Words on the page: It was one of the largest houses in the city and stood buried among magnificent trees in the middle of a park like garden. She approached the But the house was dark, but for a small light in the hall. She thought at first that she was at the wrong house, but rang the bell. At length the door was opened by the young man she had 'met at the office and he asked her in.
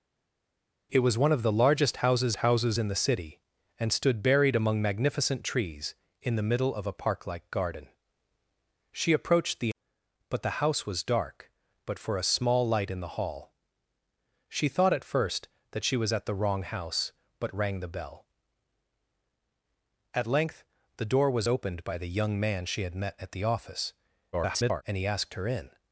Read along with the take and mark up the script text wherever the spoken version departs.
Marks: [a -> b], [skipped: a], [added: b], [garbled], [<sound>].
It was one of the largest houses [added: houses] in the city and stood buried among magnificent trees in the middle of a park like garden. She approached the But the house was dark, but for a small light in the hall. She thought at first that she was at the wrong house, but rang the bell. At length the door was opened by the young man she had 'met at the office [garbled] and he asked her in.